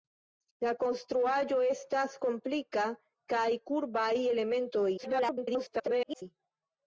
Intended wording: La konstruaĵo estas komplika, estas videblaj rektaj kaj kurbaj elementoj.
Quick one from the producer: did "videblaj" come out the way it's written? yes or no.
no